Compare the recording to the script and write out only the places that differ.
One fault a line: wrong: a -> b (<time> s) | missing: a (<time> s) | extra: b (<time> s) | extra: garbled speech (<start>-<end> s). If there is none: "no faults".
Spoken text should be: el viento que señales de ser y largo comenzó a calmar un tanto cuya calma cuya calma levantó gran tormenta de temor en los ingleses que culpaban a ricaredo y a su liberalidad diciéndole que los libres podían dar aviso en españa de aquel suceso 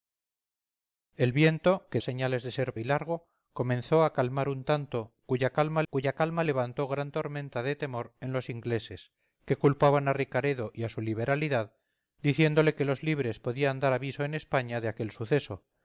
no faults